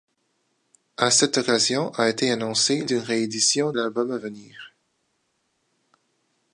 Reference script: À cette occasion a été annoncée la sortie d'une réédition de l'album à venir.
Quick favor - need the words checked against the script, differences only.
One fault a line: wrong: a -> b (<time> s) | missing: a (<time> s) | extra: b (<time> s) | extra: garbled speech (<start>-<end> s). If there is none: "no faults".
missing: la sortie (2.8 s)
missing: de (3.7 s)